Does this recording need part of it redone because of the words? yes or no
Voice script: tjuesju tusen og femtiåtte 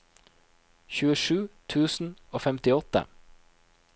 no